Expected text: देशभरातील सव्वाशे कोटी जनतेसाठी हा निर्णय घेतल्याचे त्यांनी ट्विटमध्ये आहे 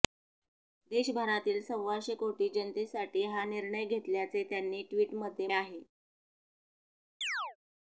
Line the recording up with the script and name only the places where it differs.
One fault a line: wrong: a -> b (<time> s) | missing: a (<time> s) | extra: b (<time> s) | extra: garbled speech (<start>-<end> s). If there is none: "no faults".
no faults